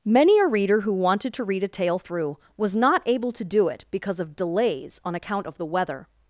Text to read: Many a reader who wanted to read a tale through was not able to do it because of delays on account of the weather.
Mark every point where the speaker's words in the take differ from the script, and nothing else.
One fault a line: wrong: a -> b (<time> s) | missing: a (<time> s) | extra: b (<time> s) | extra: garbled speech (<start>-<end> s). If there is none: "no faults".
no faults